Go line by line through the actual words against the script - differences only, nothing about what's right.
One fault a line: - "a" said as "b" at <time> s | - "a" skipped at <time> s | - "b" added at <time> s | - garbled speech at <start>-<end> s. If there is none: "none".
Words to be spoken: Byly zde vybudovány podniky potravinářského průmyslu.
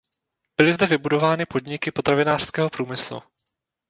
none